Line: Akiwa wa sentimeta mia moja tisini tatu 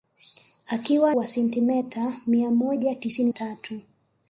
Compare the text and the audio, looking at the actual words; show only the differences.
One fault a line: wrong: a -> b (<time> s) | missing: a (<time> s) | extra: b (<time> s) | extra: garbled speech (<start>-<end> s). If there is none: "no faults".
no faults